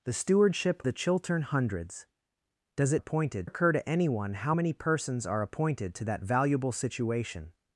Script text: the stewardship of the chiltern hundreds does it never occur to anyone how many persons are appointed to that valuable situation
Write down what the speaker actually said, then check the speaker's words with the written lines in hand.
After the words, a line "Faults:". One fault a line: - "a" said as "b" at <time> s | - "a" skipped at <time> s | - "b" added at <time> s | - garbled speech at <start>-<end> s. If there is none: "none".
the stewardship the chiltern hundreds does it appointed occur to anyone how many persons are appointed to that valuable situation
Faults:
- "of" skipped at 0.8 s
- "never" said as "appointed" at 2.9 s